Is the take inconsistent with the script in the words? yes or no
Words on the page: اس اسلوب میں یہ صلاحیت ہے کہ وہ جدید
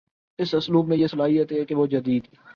no